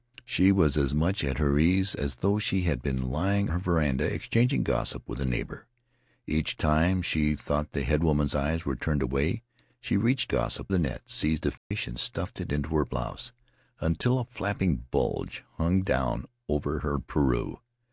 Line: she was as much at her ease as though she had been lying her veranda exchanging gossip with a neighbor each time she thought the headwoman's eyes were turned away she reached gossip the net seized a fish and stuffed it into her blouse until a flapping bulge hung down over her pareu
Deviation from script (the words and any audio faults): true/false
true